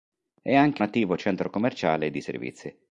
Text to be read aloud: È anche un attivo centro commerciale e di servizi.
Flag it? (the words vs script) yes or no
yes